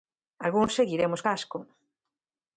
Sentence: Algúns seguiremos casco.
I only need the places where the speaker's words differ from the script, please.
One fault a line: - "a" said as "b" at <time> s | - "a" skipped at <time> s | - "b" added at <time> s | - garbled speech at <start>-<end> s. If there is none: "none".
none